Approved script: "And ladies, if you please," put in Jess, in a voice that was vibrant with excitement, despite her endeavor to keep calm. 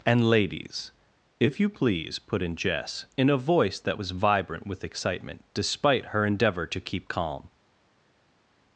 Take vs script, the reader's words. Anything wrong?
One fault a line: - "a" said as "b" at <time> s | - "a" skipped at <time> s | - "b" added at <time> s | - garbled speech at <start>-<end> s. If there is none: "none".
none